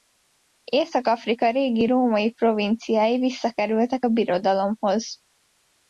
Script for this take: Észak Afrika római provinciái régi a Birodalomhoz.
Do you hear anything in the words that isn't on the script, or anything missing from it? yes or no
yes